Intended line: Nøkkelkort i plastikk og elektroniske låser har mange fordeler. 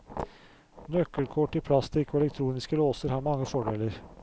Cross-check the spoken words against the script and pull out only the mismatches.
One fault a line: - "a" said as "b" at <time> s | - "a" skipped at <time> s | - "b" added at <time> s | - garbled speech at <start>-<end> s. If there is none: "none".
none